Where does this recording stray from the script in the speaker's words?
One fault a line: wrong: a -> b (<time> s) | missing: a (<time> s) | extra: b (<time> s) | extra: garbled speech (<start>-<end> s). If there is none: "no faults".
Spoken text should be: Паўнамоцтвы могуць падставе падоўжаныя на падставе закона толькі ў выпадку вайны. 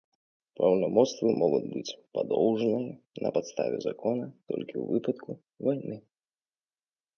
wrong: падставе -> быць (1.7 s)